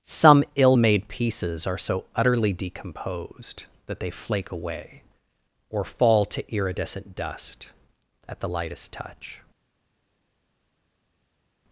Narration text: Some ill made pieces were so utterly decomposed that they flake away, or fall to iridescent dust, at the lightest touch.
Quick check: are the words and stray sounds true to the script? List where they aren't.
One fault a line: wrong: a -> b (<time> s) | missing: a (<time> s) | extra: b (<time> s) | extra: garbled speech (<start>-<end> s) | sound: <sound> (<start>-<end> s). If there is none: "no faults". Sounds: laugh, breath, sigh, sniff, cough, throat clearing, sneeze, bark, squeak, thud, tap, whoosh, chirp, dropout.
wrong: were -> are (1.7 s)